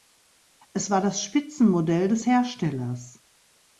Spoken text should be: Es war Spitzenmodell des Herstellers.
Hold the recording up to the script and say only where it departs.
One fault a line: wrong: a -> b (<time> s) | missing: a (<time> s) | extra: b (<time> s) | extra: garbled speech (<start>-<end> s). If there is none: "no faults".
extra: das (1.0 s)